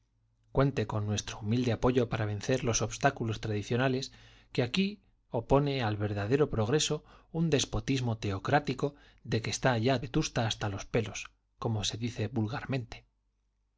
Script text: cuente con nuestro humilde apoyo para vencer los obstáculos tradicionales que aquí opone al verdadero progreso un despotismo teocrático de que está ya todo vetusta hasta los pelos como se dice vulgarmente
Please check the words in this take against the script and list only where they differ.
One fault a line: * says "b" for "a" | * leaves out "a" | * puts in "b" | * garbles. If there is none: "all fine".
* leaves out "todo"